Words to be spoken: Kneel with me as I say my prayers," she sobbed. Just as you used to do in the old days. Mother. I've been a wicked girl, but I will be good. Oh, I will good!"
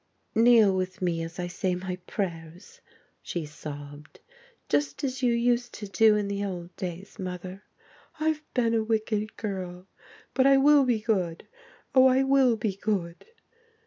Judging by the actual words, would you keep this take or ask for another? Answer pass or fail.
fail